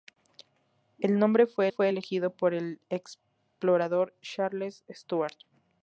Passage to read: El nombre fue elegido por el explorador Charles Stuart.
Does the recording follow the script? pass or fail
fail